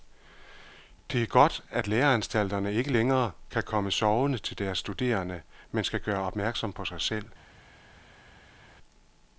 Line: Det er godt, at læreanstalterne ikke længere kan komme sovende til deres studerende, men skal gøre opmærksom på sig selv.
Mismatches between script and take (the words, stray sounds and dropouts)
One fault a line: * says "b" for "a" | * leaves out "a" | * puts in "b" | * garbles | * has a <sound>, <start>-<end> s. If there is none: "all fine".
all fine